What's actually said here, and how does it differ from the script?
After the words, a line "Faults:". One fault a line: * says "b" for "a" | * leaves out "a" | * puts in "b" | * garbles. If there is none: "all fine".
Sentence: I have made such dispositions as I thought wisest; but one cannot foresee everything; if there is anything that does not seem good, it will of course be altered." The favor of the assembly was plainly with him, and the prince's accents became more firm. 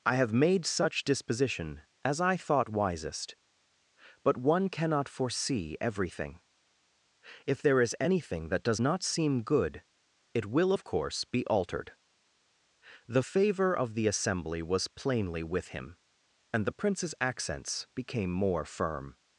I have made such disposition as I thought wisest; but one cannot foresee everything; if there is anything that does not seem good, it will of course be altered." The favor of the assembly was plainly with him, and the prince's accents became more firm.
Faults:
* says "disposition" for "dispositions"